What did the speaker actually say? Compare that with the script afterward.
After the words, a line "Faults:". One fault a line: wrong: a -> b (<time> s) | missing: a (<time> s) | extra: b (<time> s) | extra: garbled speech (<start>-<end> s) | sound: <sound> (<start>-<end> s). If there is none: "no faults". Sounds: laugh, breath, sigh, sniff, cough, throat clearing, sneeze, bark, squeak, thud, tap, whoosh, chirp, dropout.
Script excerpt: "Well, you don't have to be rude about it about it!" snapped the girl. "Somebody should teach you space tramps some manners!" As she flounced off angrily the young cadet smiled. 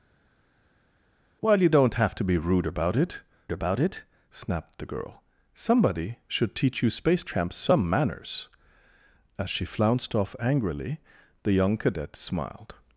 "Well, you don't have to be rude about it about it!" snapped the girl. "Somebody should teach you space tramps some manners!" As she flounced off angrily the young cadet smiled.
Faults:
no faults